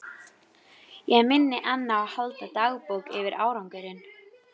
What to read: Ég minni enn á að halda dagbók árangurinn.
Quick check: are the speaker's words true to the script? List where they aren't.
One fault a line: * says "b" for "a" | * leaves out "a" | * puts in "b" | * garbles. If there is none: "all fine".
* puts in "yfir"